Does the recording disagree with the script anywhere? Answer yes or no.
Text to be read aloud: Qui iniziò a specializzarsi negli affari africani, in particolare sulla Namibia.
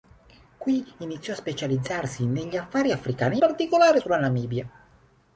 yes